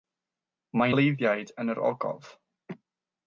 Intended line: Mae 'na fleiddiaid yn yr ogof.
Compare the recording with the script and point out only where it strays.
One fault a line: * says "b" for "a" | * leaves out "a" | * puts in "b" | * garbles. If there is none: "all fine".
* leaves out "na"